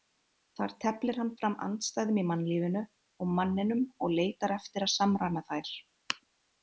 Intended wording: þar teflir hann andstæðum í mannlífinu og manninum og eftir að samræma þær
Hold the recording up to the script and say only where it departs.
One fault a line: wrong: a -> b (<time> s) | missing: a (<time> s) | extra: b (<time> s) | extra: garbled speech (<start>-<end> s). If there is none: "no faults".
extra: fram (1.4 s)
extra: leitar (4.2 s)